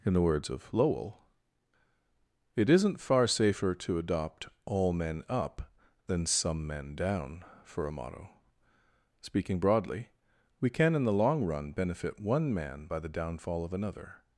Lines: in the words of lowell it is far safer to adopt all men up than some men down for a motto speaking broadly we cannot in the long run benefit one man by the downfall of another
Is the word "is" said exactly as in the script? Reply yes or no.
no